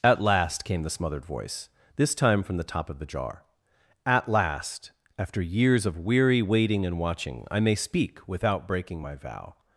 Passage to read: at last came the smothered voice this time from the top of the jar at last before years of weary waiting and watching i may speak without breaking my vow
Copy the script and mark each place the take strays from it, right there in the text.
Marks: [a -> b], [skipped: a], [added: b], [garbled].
at last came the smothered voice this time from the top of the jar at last [before -> after] years of weary waiting and watching i may speak without breaking my vow